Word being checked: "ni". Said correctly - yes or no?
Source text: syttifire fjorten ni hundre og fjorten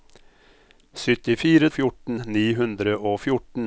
yes